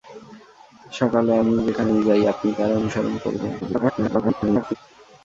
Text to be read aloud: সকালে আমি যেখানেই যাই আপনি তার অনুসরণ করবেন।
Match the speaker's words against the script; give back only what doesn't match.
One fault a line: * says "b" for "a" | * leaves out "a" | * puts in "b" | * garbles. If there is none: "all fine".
* garbles